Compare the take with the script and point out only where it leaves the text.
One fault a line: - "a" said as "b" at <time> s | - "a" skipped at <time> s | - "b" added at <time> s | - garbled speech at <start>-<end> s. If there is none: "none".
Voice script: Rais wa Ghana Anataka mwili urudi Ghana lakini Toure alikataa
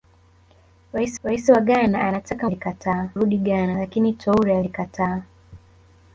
- "rais" added at 1.2 s
- "mwili" said as "alikataa" at 2.4 s